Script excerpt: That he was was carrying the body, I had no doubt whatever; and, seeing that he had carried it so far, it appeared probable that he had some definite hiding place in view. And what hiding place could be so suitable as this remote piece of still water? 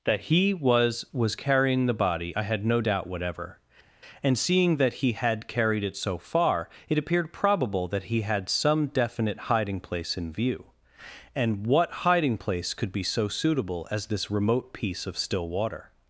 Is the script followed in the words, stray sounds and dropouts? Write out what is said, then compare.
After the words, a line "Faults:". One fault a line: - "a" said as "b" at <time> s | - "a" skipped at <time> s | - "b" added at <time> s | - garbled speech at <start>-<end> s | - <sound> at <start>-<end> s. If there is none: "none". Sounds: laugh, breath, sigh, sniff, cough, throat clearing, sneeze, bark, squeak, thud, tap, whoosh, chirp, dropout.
That he was was carrying the body, I had no doubt whatever; and, seeing that he had carried it so far, it appeared probable that he had some definite hiding place in view. And what hiding place could be so suitable as this remote piece of still water?
Faults:
none